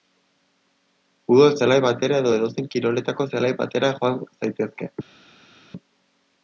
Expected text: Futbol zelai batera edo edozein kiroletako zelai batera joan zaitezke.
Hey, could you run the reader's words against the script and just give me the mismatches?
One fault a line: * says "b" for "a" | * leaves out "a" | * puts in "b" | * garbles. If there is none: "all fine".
all fine